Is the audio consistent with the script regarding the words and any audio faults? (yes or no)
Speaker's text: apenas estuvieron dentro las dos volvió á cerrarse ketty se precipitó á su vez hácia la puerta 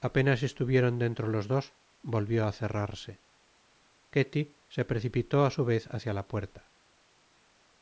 no